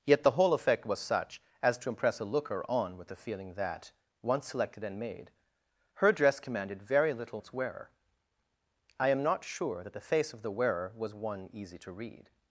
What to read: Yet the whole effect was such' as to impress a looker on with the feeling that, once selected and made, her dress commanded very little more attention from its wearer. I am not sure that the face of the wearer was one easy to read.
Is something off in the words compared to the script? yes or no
yes